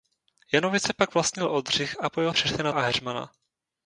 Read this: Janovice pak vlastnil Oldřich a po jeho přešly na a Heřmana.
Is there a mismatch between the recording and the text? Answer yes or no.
no